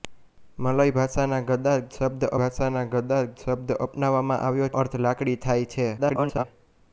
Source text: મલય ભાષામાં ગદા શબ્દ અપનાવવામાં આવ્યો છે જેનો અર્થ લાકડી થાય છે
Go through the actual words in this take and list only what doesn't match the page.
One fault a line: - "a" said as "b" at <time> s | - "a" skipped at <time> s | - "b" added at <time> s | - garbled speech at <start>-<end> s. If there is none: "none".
- "ભાષામાં ગદા શબ્દ" added at 2.4 s
- "છે જેનો" skipped at 4.7 s
- garbled speech at 6.0-6.4 s